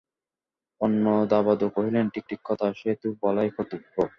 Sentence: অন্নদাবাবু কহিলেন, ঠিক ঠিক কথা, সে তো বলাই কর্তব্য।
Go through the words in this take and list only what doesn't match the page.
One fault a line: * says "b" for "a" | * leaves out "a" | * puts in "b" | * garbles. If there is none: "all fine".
all fine